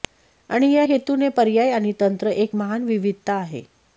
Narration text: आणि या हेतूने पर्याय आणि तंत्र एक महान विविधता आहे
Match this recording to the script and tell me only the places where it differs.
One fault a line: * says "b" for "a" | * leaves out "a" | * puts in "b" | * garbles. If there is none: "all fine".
all fine